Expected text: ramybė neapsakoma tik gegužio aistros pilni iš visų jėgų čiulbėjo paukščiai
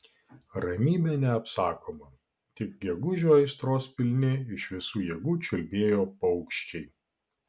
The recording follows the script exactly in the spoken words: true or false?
true